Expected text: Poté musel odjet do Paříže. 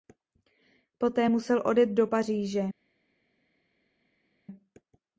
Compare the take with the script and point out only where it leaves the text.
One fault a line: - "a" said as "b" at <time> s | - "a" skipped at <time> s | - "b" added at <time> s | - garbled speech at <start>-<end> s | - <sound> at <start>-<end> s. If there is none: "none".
none